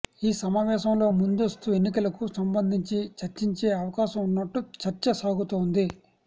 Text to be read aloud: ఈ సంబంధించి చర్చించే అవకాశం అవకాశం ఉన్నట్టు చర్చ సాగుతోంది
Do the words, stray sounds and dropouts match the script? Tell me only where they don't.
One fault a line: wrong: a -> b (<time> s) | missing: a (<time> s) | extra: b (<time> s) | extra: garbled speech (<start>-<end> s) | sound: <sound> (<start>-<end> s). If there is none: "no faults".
extra: సమావేశంలో ముందస్తు ఎన్నికలకు (0.4 s)
missing: అవకాశం (4.2 s)